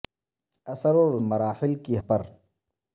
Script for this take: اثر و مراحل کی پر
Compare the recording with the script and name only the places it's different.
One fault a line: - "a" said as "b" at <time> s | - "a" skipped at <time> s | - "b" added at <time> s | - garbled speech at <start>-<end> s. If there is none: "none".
none